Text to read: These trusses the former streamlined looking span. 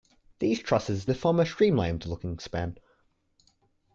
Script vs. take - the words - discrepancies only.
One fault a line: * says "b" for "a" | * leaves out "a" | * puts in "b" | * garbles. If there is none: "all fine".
all fine